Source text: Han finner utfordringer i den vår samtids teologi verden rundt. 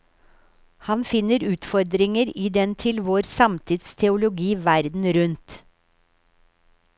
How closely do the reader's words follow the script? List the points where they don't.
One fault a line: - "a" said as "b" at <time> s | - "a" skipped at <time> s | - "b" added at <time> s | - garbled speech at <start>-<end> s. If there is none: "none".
- "til" added at 2.8 s